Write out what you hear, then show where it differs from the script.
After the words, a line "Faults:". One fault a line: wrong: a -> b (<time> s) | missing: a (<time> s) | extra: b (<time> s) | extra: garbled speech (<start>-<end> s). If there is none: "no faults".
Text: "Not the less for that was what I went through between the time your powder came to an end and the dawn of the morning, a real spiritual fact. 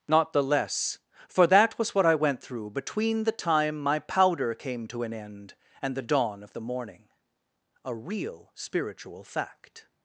"Not the less for that was what I went through between the time my powder came to an end and the dawn of the morning, a real spiritual fact.
Faults:
wrong: your -> my (3.8 s)